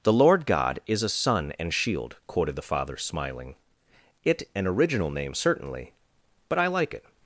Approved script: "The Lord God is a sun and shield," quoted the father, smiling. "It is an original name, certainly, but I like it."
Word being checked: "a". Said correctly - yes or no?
yes